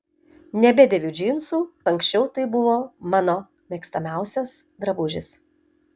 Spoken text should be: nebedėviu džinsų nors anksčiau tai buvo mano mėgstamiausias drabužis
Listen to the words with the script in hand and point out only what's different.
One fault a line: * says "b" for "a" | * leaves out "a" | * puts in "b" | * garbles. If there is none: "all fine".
* leaves out "nors"